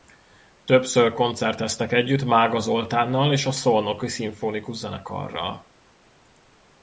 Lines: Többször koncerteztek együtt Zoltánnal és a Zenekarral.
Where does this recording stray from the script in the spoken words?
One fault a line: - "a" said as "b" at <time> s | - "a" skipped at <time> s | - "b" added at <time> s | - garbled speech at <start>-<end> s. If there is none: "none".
- "Mága" added at 2.2 s
- "Szolnoki Szimfonikus" added at 3.5 s